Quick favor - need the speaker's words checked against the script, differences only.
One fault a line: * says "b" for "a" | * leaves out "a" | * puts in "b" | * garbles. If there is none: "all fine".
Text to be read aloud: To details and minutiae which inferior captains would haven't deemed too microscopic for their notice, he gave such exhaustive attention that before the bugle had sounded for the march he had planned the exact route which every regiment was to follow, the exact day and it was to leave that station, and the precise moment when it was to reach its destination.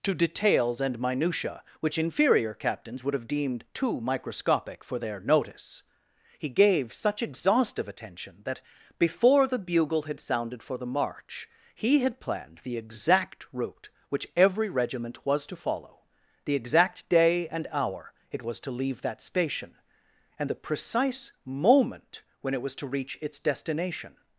* says "have" for "haven't"
* puts in "hour"